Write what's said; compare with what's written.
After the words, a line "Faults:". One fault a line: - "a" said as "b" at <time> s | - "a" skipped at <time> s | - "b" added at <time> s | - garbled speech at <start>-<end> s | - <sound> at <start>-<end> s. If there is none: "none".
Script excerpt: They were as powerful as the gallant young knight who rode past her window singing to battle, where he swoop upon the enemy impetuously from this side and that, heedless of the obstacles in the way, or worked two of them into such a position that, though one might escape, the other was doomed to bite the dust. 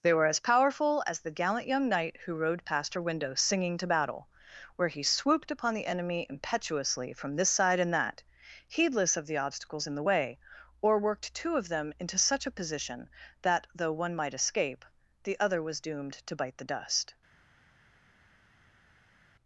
They were as powerful as the gallant young knight who rode past her window singing to battle, where he swooped upon the enemy impetuously from this side and that, heedless of the obstacles in the way, or worked two of them into such a position that, though one might escape, the other was doomed to bite the dust.
Faults:
- "swoop" said as "swooped" at 5.0 s